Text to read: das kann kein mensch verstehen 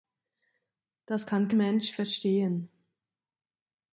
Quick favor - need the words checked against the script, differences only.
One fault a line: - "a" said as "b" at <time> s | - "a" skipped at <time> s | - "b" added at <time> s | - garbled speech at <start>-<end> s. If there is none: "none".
- "kein" skipped at 1.5 s